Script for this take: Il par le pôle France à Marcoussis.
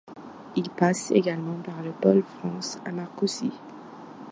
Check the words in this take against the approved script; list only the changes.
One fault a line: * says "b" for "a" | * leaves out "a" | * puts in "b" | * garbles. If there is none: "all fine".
* puts in "passe également"